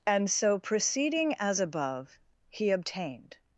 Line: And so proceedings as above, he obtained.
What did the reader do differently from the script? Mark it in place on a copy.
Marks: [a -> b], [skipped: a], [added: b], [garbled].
And so [proceedings -> proceeding] as above, he obtained.